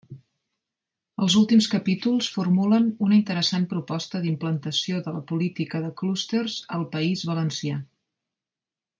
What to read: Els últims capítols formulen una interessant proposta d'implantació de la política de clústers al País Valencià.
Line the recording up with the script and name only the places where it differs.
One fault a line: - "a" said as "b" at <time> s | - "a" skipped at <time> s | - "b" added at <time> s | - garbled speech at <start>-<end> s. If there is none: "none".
none